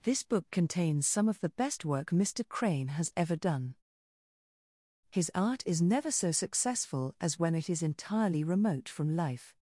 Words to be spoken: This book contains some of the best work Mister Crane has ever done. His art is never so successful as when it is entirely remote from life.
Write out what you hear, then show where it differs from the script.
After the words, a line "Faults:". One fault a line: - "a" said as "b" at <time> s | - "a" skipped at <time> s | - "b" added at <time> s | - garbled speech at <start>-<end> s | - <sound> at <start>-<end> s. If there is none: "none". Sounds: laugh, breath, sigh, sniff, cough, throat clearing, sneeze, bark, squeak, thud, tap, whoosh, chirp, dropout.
This book contains some of the best work Mister Crane has ever done. His art is never so successful as when it is entirely remote from life.
Faults:
none